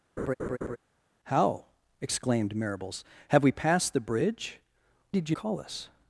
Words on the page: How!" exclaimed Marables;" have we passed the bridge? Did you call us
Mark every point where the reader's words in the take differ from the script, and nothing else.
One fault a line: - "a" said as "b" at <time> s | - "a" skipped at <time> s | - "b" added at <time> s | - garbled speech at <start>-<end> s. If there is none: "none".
none